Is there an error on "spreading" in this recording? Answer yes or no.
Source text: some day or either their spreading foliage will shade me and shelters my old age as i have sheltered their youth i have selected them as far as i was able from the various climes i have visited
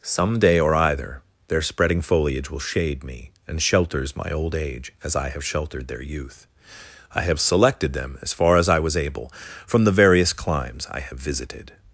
no